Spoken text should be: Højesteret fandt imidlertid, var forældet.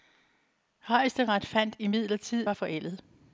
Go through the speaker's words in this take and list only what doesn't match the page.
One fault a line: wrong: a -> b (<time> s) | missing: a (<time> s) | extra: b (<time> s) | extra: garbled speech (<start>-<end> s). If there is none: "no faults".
no faults